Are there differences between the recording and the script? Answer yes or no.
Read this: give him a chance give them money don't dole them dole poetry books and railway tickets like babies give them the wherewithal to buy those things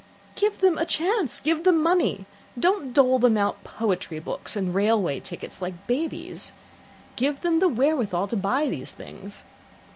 yes